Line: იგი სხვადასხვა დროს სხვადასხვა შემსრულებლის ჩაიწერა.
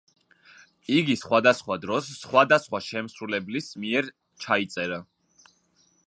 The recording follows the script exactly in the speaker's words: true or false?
false